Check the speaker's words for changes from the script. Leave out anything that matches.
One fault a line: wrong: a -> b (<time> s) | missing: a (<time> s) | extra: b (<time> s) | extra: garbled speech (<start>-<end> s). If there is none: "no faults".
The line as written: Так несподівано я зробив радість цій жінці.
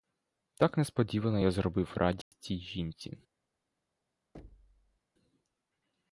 no faults